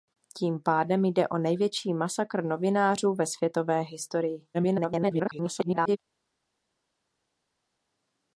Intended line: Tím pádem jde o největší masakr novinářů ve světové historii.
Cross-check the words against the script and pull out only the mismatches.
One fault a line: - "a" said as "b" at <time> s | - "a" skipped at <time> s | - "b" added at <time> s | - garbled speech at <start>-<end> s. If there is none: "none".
- garbled speech at 4.5-6.0 s